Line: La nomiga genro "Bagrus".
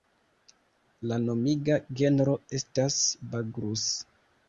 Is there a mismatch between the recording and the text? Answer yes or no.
yes